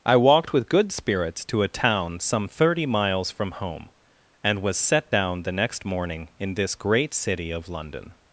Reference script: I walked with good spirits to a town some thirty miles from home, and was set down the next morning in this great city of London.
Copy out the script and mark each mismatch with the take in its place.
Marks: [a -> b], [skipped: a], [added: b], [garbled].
I walked with good spirits to a town some thirty miles from home, and was set down the next morning in this great city of London.